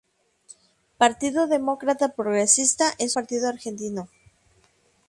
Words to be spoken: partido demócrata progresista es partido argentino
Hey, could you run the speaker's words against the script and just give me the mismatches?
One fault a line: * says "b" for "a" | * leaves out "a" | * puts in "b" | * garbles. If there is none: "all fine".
all fine